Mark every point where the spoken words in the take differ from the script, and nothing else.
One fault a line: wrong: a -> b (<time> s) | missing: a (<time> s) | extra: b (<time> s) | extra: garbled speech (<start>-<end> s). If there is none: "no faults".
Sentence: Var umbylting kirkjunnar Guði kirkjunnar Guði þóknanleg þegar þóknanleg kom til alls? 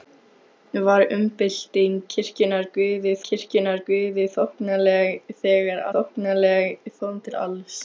no faults